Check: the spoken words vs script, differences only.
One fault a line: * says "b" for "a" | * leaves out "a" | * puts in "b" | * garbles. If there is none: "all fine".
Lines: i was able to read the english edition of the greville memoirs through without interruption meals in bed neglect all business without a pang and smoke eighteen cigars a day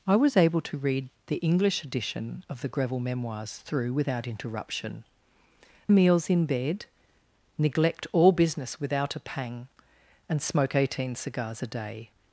all fine